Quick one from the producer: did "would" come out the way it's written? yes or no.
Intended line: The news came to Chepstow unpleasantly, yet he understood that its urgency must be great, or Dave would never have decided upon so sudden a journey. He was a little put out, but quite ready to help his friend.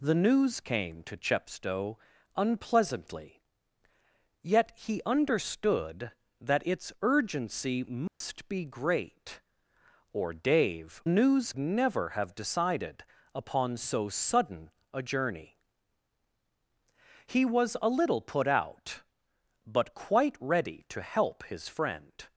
no